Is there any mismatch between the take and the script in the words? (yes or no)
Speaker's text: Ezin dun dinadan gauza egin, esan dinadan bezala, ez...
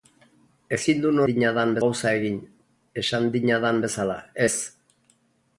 no